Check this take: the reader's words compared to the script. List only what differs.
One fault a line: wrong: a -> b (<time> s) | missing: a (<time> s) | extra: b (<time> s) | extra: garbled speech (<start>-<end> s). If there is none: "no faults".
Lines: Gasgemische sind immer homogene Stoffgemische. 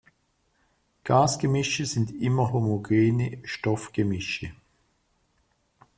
no faults